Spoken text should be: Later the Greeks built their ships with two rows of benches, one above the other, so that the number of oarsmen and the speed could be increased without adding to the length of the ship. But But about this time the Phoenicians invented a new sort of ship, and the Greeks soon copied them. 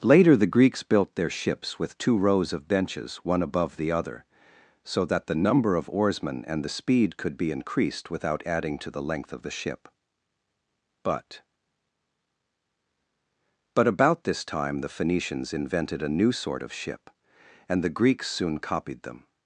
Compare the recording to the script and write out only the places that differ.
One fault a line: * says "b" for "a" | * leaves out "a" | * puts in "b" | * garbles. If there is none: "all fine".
all fine